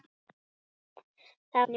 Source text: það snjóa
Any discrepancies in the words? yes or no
no